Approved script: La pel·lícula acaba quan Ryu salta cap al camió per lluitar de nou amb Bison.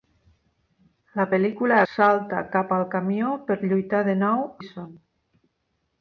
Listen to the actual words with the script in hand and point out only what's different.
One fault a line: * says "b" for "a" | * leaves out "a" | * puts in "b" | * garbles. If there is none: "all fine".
* leaves out "acaba quan Ryu"
* leaves out "amb"